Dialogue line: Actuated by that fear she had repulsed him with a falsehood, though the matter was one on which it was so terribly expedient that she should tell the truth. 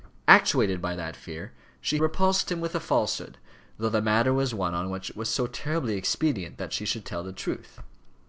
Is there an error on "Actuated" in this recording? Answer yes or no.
no